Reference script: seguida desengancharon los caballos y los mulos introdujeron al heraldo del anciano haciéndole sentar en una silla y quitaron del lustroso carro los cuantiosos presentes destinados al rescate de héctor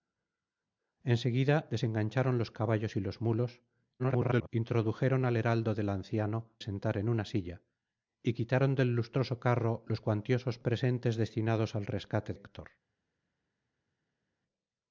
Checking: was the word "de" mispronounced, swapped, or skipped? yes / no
yes